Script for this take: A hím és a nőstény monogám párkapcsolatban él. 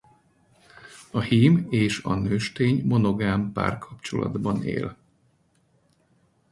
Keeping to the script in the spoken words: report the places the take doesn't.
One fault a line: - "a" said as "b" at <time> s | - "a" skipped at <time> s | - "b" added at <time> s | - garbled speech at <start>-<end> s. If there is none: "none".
none